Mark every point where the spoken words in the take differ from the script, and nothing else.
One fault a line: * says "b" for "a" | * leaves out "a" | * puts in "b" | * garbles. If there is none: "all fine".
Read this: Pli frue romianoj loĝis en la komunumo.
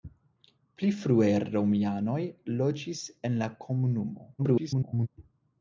* garbles